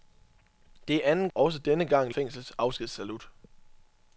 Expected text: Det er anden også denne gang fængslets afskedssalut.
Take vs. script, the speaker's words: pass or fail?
pass